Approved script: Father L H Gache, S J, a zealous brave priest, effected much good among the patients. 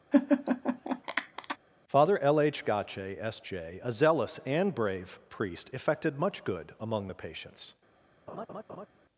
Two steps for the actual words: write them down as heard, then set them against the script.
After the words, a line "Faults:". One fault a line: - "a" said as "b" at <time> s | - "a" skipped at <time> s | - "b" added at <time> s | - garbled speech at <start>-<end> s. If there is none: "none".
Father L H Gache, S J, a zealous and brave priest, effected much good among the patients.
Faults:
- "and" added at 4.4 s